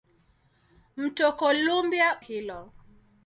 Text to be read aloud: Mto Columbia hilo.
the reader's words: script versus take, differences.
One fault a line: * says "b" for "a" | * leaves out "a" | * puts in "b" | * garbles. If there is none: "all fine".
all fine